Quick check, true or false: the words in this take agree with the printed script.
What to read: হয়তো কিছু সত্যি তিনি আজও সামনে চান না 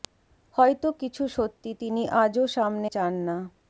true